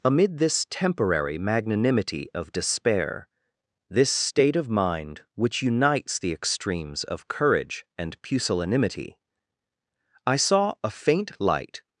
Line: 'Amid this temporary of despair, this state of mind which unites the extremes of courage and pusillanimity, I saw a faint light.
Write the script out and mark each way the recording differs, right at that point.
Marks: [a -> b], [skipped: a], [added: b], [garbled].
'Amid this temporary [added: magnanimity] of despair, this state of mind which unites the extremes of courage and pusillanimity, I saw a faint light.